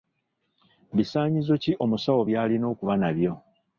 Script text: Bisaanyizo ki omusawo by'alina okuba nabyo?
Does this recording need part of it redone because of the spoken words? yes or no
no